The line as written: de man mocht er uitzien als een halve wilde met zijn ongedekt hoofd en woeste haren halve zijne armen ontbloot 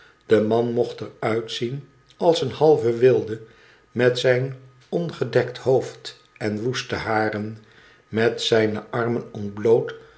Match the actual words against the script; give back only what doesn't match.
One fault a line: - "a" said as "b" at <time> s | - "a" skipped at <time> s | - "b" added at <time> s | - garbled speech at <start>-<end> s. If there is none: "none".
- "halve" said as "met" at 8.1 s